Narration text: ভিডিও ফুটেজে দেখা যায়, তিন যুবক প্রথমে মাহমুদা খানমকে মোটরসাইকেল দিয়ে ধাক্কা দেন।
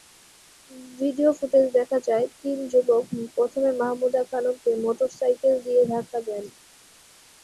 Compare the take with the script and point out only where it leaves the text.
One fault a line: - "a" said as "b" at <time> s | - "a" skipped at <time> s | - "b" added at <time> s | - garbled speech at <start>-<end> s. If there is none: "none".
none